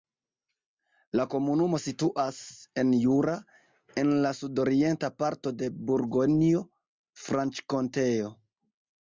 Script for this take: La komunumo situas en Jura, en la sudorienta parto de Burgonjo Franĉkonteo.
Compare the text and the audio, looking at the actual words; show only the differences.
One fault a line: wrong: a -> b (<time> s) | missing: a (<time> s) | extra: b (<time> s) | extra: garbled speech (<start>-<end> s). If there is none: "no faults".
no faults